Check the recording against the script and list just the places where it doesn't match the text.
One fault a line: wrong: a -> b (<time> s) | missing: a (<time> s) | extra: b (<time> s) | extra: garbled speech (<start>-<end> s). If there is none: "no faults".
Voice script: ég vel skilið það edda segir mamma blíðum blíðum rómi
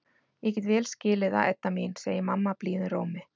extra: get (0.6 s)
extra: mín (1.8 s)
missing: blíðum (2.9 s)